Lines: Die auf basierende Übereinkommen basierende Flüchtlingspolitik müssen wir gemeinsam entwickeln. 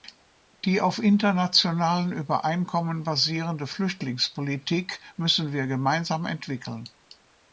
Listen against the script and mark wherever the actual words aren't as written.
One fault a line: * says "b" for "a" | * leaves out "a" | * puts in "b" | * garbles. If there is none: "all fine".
* says "internationalen" for "basierende"